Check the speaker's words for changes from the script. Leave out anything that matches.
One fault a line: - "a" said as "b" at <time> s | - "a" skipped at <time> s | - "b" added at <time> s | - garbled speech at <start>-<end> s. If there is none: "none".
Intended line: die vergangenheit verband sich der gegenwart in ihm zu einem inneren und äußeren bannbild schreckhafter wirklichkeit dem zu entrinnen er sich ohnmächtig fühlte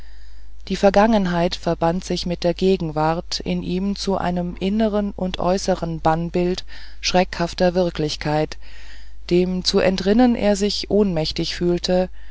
- "mit" added at 2.2 s